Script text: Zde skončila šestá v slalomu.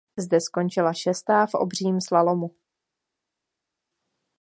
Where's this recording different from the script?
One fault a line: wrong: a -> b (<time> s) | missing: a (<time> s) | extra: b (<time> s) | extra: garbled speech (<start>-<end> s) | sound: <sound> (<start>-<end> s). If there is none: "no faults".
extra: obřím (1.5 s)